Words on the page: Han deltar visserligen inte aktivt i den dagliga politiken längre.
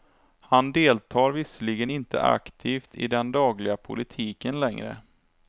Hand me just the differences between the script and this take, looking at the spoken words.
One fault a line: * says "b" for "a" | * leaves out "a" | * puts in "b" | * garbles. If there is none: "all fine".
all fine